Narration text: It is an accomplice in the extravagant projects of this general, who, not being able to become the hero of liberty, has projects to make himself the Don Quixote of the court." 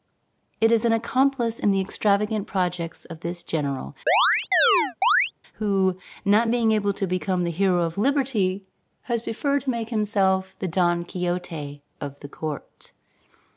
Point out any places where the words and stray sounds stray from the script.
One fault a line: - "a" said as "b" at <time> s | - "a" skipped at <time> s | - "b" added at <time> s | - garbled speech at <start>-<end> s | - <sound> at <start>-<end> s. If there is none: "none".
- chirp at 4.1-5.3 s
- "projects" said as "preferred" at 9.2 s